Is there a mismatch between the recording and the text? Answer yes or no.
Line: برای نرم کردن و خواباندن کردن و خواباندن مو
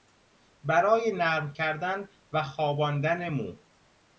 yes